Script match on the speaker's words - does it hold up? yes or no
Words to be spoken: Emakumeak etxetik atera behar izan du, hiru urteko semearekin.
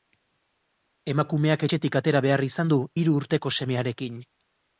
yes